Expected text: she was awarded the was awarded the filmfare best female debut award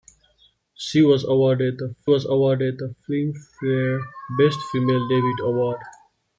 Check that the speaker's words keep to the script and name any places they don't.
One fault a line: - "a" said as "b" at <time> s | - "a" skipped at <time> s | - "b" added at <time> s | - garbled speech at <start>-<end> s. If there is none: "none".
none